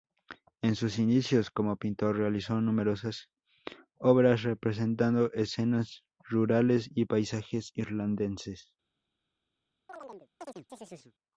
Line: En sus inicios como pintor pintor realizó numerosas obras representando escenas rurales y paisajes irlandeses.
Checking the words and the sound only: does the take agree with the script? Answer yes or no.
no